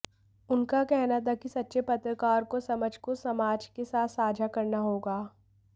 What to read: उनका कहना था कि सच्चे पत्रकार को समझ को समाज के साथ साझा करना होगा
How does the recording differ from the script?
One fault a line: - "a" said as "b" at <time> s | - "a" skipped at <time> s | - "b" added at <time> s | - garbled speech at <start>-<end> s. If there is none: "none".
none